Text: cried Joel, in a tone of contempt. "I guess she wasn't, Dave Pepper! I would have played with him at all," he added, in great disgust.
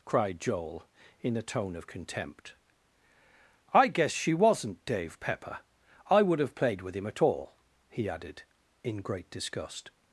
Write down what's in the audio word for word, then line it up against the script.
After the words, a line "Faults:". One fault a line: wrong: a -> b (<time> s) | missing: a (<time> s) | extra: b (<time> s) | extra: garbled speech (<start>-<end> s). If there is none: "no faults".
cried Joel, in a tone of contempt. "I guess she wasn't, Dave Pepper! I would have played with him at all," he added, in great disgust.
Faults:
no faults